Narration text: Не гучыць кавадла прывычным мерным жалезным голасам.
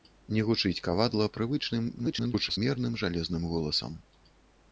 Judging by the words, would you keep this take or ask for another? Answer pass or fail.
fail